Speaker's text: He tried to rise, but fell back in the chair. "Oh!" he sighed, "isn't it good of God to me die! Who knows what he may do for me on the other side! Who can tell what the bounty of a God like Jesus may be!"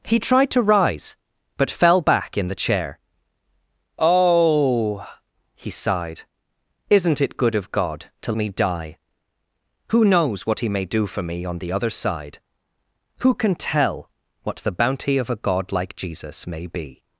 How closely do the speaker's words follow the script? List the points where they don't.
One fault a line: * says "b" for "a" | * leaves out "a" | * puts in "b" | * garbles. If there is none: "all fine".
all fine